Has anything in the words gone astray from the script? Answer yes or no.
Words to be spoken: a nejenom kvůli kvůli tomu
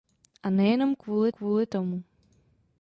no